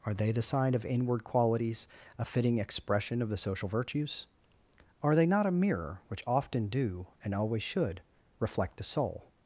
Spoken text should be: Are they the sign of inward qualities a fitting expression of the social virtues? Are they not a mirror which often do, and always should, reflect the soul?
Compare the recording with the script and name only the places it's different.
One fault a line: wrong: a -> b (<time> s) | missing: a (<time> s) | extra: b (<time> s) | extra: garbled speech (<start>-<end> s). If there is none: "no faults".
no faults